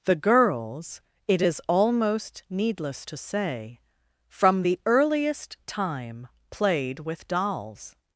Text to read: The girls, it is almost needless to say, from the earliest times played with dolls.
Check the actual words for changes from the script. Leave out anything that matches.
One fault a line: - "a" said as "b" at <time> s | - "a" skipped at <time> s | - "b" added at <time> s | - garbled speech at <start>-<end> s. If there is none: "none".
- "times" said as "time" at 5.7 s